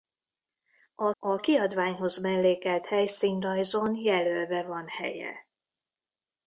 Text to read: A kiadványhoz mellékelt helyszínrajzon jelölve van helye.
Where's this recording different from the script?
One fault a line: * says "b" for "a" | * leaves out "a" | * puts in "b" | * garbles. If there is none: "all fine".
* puts in "a"